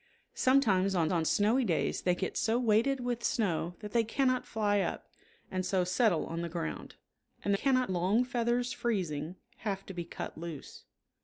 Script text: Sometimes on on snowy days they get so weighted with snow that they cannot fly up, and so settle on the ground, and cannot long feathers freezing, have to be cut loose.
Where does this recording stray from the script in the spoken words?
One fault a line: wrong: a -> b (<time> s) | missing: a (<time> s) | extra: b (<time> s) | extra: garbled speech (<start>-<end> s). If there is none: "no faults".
no faults